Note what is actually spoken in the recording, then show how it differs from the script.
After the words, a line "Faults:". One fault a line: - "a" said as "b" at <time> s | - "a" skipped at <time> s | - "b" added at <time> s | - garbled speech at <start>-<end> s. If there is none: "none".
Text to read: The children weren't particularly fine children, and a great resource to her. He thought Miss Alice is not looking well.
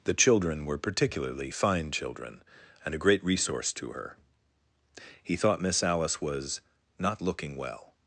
The children were particularly fine children, and a great resource to her. He thought Miss Alice was not looking well.
Faults:
- "weren't" said as "were" at 0.7 s
- "is" said as "was" at 6.2 s